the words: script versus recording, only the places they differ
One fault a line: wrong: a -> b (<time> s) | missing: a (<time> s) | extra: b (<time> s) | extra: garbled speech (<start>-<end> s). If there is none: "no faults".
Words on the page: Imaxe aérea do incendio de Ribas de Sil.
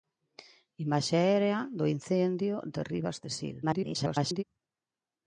extra: garbled speech (3.6-4.4 s)